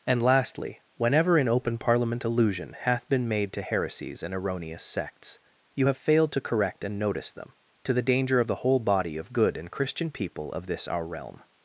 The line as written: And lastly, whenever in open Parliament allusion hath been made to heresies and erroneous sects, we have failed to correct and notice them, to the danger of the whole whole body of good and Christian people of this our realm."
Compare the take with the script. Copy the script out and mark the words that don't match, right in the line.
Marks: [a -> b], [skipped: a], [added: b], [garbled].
And lastly, whenever in open Parliament allusion hath been made to heresies and erroneous sects, [we -> you] have failed to correct and notice them, to the danger of the whole [skipped: whole] body of good and Christian people of this our realm."